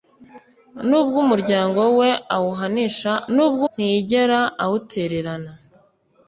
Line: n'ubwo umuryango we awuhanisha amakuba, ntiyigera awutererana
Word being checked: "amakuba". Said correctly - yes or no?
no